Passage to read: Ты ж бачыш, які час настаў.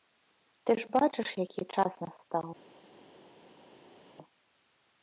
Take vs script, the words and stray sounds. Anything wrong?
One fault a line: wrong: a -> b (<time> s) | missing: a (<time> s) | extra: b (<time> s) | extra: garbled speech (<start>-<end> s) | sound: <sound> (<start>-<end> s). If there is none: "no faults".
no faults